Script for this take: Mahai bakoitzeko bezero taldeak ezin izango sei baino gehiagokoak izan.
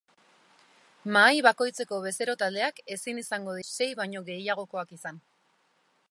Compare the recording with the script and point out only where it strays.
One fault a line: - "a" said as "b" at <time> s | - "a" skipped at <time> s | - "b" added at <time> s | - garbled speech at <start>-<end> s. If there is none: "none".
none